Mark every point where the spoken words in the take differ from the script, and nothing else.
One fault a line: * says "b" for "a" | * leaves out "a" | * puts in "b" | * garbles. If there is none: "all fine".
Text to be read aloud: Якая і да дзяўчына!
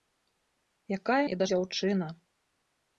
all fine